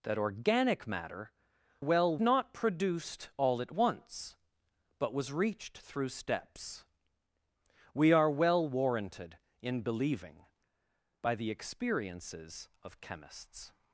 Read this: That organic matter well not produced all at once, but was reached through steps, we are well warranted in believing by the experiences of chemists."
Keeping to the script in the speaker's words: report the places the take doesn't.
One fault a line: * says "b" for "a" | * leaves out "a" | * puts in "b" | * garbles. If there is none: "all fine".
all fine